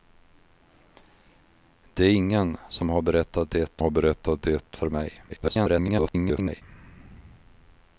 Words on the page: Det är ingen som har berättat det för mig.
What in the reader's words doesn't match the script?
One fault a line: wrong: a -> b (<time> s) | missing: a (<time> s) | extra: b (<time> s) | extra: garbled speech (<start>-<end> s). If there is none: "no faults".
extra: har berättat det (3.8 s)
extra: garbled speech (5.3-6.6 s)